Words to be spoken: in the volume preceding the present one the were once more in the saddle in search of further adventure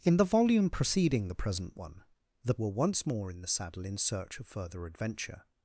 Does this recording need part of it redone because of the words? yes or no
no